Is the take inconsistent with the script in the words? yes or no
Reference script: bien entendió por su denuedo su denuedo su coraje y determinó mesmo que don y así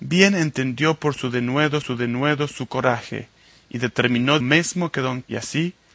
no